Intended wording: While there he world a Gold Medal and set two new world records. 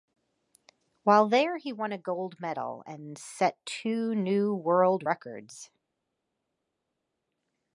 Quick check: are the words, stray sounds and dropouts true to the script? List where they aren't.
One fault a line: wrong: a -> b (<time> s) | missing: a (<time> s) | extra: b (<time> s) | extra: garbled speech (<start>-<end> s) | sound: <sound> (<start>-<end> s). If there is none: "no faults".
wrong: world -> won (1.7 s)